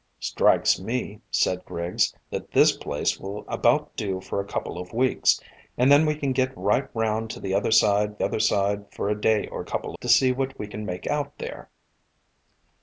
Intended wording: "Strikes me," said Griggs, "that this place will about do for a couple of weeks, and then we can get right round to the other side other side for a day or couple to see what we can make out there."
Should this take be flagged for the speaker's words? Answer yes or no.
no